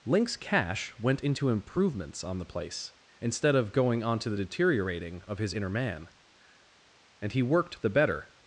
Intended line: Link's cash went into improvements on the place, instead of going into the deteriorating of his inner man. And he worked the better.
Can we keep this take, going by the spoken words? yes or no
no